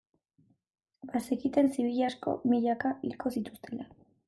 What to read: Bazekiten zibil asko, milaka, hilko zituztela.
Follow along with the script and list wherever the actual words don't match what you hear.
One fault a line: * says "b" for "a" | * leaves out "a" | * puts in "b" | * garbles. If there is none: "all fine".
all fine